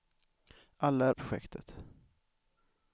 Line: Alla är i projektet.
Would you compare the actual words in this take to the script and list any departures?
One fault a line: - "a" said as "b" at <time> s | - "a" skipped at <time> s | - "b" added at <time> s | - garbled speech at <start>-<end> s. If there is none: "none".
none